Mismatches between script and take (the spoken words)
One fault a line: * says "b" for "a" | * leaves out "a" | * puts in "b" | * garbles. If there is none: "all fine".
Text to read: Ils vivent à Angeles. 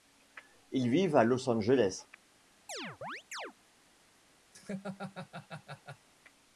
* puts in "Los"